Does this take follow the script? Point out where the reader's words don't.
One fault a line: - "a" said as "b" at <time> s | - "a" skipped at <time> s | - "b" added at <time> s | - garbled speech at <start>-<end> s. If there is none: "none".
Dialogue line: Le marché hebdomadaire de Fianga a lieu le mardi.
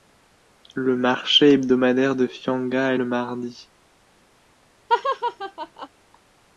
- "lieu" skipped at 3.0 s